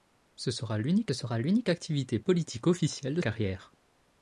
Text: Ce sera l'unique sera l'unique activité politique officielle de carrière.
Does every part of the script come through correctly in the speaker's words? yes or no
yes